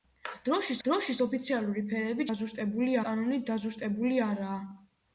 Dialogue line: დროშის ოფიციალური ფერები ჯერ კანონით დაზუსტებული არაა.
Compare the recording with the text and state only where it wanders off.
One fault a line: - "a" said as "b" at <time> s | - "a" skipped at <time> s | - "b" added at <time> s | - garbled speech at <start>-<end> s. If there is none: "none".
- "დროშის" added at 0.8 s
- "ჯერ" said as "დაზუსტებული" at 2.3 s